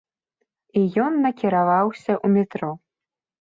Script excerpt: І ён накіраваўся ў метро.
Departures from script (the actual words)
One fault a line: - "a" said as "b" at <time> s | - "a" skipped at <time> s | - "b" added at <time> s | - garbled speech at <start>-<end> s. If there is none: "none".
none